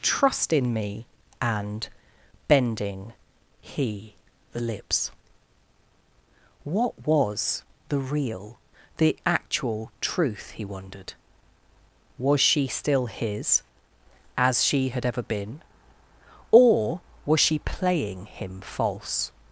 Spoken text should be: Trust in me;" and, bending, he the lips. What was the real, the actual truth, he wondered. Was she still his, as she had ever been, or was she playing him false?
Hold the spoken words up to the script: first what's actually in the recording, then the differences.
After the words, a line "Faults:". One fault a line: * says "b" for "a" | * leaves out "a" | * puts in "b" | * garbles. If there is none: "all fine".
Trust in me;" and, bending, he the lips. What was the real, the actual truth, he wondered. Was she still his, as she had ever been, or was she playing him false?
Faults:
all fine